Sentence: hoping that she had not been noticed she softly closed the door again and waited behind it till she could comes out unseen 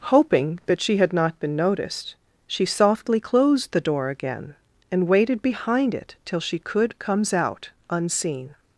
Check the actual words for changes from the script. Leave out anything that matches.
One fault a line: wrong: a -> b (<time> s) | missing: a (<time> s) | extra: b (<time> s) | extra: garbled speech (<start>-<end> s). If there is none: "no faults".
no faults